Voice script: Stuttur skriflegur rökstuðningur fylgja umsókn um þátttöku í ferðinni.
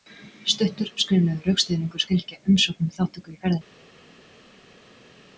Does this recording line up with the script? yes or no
yes